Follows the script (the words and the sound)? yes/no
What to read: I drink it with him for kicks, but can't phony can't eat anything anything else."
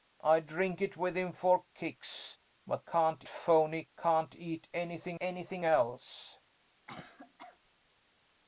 no